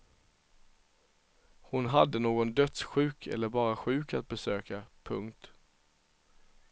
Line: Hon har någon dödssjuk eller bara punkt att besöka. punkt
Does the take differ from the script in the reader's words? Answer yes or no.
yes